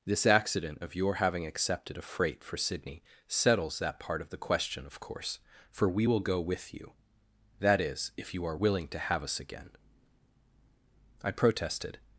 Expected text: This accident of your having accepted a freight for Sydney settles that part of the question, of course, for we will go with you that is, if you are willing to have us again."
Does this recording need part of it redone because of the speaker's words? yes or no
yes